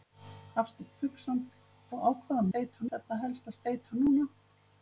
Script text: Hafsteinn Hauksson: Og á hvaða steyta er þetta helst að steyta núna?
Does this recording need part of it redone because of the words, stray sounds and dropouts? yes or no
no